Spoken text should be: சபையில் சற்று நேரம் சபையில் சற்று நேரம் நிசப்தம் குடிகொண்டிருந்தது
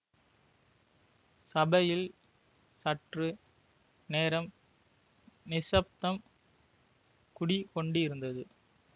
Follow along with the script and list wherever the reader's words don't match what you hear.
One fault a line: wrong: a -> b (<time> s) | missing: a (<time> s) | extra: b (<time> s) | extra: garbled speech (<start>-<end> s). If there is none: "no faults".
missing: சபையில் சற்று நேரம் (4.5 s)